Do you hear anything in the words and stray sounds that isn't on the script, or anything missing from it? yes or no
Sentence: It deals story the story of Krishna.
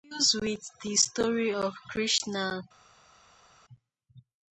yes